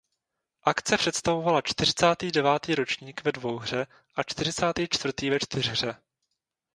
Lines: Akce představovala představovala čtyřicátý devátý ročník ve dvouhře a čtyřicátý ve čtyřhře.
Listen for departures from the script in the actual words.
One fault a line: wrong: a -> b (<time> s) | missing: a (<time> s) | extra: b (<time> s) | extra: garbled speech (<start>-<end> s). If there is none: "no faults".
missing: představovala (1.6 s)
extra: čtvrtý (4.9 s)